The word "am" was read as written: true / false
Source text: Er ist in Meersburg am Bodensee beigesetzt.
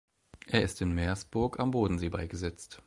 true